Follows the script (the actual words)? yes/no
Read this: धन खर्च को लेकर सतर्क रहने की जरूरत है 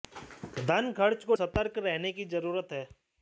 no